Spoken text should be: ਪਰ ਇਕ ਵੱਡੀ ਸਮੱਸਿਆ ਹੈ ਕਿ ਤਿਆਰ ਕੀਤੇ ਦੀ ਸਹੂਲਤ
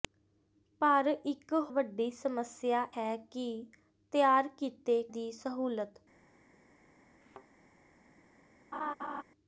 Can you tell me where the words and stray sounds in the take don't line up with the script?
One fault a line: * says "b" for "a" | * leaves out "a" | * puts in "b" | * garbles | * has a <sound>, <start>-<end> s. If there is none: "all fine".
* has a thud, 7.2-7.5 s
* has a laugh, 8.7-9.2 s